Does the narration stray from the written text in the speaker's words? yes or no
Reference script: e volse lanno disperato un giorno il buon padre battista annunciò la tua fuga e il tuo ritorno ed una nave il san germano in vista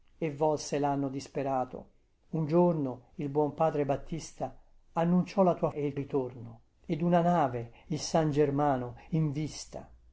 yes